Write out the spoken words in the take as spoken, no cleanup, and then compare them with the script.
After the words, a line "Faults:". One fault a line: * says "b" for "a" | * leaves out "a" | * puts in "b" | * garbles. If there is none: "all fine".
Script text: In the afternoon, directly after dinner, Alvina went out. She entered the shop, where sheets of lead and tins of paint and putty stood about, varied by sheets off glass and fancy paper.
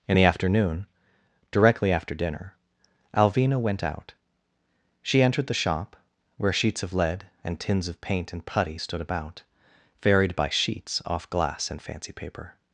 In the afternoon, directly after dinner, Alvina went out. She entered the shop, where sheets of lead and tins of paint and putty stood about, varied by sheets off glass and fancy paper.
Faults:
all fine